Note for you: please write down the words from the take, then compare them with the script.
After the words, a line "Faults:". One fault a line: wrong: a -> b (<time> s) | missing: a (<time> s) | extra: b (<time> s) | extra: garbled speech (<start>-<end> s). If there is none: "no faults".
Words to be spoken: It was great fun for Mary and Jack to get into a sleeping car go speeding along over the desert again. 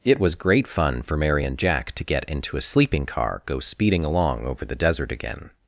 It was great fun for Mary and Jack to get into a sleeping car go speeding along over the desert again.
Faults:
no faults